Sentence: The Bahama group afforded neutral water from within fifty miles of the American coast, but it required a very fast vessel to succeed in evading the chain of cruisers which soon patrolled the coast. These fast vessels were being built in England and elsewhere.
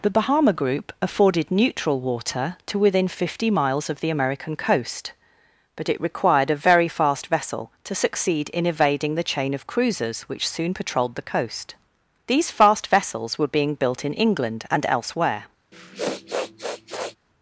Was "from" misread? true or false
true